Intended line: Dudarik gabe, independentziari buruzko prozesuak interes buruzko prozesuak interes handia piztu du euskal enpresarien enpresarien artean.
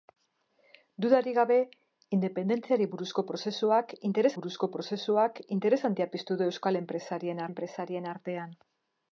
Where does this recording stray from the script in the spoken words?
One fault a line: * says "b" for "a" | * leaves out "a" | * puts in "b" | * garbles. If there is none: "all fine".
all fine